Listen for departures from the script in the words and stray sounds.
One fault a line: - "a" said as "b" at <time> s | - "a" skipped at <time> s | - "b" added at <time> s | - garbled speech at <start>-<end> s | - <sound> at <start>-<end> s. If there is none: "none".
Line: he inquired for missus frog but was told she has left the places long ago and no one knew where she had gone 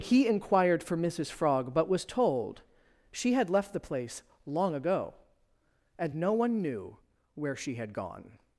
- "has" said as "had" at 3.3 s
- "places" said as "place" at 3.8 s